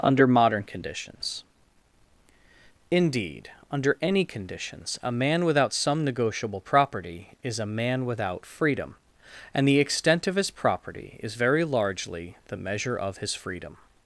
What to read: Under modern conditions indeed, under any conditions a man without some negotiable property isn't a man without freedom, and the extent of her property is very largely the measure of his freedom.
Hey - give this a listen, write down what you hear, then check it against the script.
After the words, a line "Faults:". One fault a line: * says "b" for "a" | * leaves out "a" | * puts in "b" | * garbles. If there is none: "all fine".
Under modern conditions indeed, under any conditions a man without some negotiable property is a man without freedom, and the extent of his property is very largely the measure of his freedom.
Faults:
* says "is" for "isn't"
* says "his" for "her"